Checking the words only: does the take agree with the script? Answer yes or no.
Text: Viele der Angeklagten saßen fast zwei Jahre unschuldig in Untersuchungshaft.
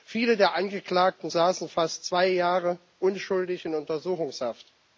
yes